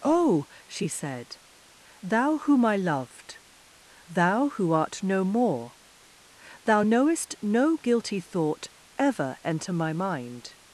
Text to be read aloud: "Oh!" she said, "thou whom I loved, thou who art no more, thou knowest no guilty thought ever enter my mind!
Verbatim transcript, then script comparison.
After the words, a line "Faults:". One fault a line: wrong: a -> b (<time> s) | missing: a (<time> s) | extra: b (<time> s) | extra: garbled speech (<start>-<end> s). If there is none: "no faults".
"Oh!" she said, "thou whom I loved, thou who art no more, thou knowest no guilty thought ever enter my mind!
Faults:
no faults